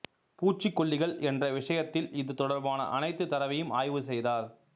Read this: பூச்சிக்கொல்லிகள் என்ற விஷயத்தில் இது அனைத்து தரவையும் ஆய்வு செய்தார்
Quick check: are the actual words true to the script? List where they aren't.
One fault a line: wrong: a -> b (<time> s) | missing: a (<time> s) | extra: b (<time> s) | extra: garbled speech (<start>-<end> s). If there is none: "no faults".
extra: தொடர்பான (2.4 s)